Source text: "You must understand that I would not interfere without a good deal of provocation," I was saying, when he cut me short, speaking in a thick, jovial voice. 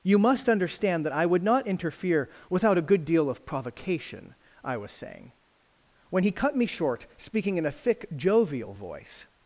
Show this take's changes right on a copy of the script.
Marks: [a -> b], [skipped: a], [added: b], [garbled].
"You must understand that I would not interfere without a good deal of provocation," I was saying, when he cut me short, speaking in a thick, jovial voice.